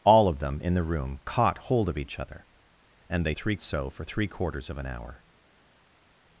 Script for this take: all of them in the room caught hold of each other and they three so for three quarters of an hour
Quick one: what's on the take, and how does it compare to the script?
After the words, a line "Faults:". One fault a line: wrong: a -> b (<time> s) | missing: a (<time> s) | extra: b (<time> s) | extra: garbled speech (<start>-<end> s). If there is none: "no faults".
all of them in the room caught hold of each other and they three so for three quarters of an hour
Faults:
no faults